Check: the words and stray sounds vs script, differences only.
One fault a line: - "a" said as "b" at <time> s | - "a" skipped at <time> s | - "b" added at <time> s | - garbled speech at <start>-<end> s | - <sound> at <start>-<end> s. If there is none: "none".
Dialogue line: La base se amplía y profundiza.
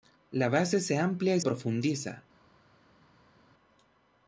none